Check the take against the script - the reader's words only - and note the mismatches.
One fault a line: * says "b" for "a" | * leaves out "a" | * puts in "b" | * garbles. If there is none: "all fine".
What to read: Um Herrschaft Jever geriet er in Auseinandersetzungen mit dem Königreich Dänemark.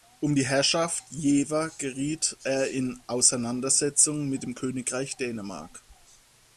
* puts in "die"